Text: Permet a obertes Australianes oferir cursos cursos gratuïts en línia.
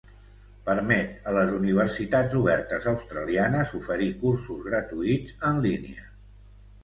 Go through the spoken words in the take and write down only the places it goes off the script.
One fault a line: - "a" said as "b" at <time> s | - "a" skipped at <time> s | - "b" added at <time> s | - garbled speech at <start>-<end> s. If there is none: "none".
- "les universitats" added at 1.4 s
- "cursos" skipped at 4.6 s